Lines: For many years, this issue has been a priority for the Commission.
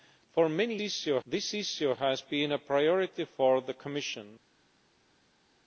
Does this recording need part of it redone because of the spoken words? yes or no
yes